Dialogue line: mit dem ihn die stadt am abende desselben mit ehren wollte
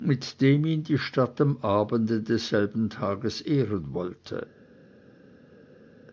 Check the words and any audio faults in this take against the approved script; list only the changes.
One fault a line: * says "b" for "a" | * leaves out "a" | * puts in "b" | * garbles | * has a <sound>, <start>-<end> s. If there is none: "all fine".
* says "tages" for "mit"